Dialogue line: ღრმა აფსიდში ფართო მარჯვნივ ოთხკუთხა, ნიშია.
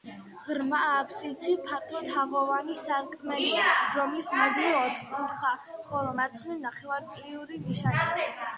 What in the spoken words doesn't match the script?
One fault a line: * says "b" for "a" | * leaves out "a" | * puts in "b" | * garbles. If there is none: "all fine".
* puts in "თაღოვანი სარკმელია რომლის"
* puts in "ხოლო მარცხნივ ნახევარწრიული"